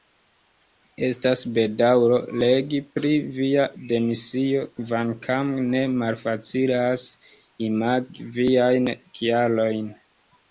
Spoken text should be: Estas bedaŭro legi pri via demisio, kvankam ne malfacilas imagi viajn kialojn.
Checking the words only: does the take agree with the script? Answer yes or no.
yes